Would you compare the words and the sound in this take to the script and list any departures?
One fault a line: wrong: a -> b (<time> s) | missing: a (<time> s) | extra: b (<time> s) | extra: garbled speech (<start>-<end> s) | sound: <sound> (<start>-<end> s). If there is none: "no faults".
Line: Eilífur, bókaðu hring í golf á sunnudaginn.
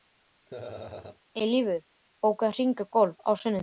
sound: laugh (0.5-1.2 s)